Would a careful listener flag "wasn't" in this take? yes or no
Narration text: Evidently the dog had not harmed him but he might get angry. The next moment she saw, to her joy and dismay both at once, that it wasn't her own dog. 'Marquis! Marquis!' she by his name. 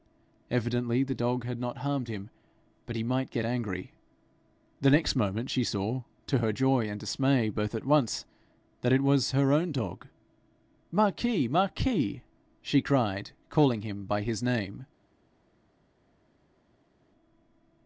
yes